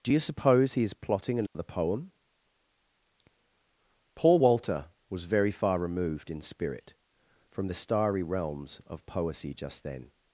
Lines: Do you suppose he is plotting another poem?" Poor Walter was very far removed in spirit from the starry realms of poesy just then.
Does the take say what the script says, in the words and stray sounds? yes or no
no